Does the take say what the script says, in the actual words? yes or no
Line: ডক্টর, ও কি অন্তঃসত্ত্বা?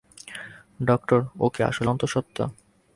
no